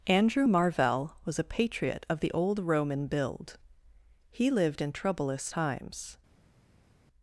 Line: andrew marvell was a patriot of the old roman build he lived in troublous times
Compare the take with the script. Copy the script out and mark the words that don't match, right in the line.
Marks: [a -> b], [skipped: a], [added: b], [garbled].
andrew marvell was a patriot of the old roman build he lived in troublous times